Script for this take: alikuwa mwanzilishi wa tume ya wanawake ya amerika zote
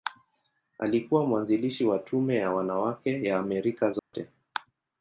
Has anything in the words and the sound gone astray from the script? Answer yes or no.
yes